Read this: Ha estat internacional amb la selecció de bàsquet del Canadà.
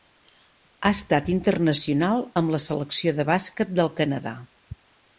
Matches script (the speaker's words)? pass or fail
pass